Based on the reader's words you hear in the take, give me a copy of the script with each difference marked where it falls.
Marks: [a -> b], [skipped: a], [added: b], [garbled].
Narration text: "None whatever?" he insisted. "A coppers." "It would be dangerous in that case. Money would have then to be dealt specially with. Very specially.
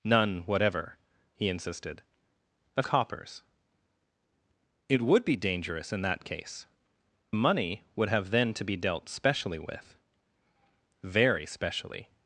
"None whatever?" he insisted. "A coppers." "It would be dangerous in that case. Money would have then to be dealt specially with. Very specially.